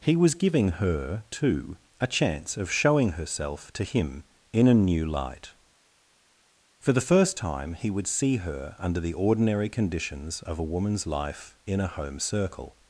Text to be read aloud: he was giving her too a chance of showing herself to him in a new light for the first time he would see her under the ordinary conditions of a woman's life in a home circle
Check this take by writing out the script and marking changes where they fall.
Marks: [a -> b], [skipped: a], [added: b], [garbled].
he was giving her too a chance of showing herself to him in a new light for the first time he would see her under the ordinary conditions of a woman's life in a home circle